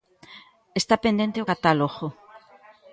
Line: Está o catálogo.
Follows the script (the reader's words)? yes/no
no